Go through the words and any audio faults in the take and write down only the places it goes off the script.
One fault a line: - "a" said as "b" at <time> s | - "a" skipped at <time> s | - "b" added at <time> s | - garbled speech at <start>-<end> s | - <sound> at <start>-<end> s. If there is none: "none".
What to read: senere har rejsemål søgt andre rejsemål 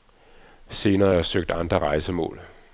- "rejsemål" said as "jeg" at 1.1 s